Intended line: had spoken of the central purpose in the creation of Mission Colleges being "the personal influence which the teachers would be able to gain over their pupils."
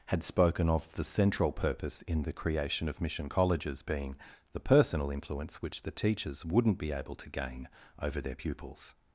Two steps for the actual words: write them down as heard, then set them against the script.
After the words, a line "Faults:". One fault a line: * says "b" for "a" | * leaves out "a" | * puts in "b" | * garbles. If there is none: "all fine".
had spoken of the central purpose in the creation of Mission Colleges being "the personal influence which the teachers wouldn't be able to gain over their pupils."
Faults:
* says "wouldn't" for "would"